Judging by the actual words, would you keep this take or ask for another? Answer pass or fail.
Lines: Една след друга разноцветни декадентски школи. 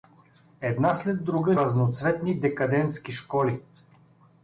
pass